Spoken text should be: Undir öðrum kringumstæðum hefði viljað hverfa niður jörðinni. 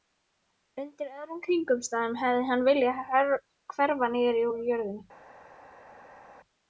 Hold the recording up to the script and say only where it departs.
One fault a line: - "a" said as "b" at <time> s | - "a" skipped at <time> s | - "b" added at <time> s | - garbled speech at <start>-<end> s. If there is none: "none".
- "hann" added at 2.5 s
- "úr" added at 4.5 s